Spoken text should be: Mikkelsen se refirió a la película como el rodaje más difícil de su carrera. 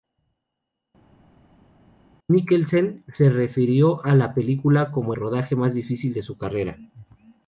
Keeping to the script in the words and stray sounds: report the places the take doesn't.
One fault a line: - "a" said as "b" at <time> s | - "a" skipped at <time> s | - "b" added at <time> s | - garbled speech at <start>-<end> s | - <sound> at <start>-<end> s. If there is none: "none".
- "el" skipped at 5.1 s